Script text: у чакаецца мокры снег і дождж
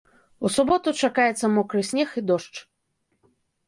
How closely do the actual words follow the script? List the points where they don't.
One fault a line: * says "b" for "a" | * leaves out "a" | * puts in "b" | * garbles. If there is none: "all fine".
* puts in "суботу"